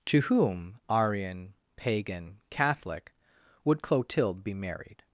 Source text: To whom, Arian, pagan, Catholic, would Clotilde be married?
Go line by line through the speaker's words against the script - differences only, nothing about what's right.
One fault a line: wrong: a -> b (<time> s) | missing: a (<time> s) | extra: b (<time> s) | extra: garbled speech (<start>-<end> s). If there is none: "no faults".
no faults